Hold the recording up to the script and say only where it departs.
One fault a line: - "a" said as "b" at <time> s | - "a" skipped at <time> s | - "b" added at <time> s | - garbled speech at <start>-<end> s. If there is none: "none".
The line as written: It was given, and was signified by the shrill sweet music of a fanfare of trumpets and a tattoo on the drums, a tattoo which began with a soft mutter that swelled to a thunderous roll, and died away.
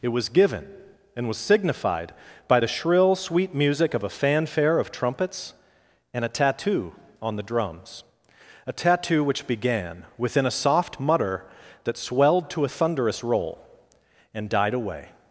- "with" said as "within" at 10.2 s